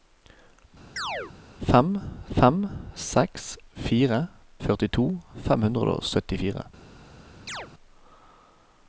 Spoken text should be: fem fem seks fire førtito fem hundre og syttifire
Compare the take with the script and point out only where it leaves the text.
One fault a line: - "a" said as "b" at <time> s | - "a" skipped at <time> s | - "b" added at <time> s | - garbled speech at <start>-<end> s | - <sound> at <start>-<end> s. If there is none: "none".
- chirp at 1.0-1.3 s
- chirp at 7.5-7.7 s